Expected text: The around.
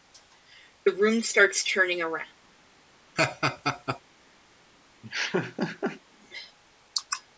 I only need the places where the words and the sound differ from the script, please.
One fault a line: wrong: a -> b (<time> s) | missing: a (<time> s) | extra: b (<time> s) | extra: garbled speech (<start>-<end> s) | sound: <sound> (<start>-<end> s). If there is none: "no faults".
extra: room starts turning (0.9 s)
sound: laugh (3.2-4.0 s)
sound: laugh (5.0-6.0 s)